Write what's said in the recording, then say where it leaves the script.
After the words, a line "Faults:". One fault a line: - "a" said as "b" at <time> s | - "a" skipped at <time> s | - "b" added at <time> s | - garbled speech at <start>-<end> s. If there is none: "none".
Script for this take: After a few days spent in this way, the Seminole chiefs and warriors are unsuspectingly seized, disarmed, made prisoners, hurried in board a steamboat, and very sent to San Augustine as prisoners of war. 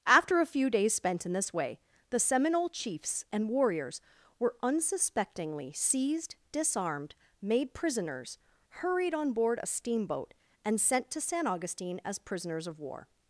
After a few days spent in this way, the Seminole chiefs and warriors were unsuspectingly seized, disarmed, made prisoners, hurried on board a steamboat, and sent to San Augustine as prisoners of war.
Faults:
- "are" said as "were" at 4.4 s
- "in" said as "on" at 9.1 s
- "very" skipped at 10.8 s